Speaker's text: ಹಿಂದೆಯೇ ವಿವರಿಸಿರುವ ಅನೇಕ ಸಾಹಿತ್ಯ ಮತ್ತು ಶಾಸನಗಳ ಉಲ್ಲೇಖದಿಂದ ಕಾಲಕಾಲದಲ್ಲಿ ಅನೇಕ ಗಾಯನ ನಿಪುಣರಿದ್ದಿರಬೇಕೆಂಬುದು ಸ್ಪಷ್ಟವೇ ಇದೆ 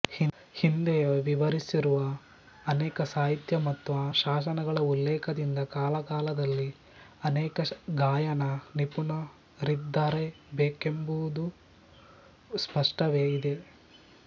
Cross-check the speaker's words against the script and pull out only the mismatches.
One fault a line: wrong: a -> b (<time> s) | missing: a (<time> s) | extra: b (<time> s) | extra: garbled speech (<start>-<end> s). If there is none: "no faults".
no faults